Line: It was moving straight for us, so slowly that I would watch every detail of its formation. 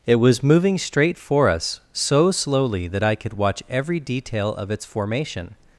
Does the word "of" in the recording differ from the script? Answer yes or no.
no